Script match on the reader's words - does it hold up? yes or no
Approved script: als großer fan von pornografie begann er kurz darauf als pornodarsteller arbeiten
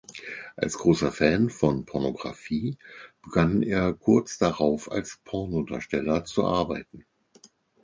no